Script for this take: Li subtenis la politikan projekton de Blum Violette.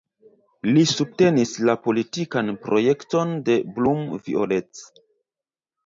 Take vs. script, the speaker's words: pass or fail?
pass